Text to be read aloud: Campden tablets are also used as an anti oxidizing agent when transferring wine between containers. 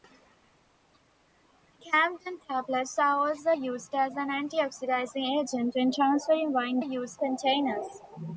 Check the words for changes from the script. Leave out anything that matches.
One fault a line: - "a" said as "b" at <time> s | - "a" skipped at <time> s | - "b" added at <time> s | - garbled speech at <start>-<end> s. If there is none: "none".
- "between" said as "used" at 6.8 s